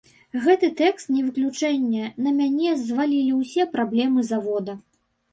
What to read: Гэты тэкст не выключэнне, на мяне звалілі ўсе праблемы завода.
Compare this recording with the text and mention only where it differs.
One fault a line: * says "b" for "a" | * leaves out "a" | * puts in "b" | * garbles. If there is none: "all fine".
all fine